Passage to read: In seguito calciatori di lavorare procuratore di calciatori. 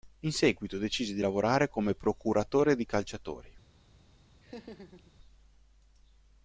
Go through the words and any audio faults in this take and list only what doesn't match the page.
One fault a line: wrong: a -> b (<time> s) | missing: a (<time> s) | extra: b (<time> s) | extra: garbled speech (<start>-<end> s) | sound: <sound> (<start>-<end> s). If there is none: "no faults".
wrong: calciatori -> decise (0.8 s)
extra: come (1.7 s)
sound: laugh (4.4-5.1 s)